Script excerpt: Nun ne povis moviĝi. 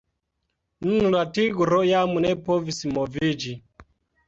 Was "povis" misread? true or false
false